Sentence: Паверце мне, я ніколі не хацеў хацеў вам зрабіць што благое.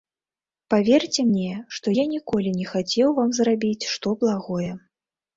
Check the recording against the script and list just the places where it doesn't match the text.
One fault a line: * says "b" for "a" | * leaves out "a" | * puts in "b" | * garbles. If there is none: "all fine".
* puts in "што"
* leaves out "хацеў"